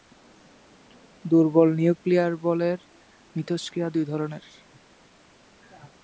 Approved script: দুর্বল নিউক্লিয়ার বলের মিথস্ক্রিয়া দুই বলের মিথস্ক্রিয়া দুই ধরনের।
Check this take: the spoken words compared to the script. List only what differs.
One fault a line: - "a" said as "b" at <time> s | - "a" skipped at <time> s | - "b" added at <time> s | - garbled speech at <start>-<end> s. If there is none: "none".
- "বলের মিথস্ক্রিয়া দুই" skipped at 4.0 s